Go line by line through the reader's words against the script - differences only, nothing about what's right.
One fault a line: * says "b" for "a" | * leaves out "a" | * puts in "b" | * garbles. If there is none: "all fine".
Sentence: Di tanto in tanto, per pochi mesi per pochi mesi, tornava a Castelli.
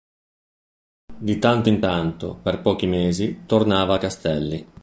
* leaves out "per pochi mesi"